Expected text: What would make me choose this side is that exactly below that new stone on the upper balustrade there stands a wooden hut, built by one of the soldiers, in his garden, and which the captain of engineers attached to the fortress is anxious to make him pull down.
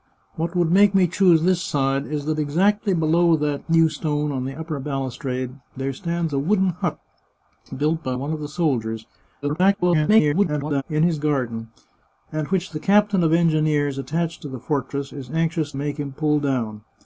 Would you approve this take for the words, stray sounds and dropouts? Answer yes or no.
no